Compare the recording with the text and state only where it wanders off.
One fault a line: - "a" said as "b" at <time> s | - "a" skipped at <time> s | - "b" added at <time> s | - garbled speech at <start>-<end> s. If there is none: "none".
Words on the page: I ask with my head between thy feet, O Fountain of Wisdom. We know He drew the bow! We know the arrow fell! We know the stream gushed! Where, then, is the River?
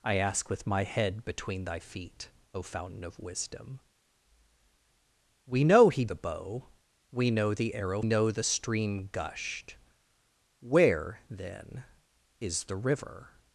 - "drew" skipped at 6.0 s
- "fell We" skipped at 8.0 s